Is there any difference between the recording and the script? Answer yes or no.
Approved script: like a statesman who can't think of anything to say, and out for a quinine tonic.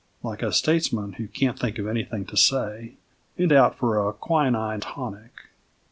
no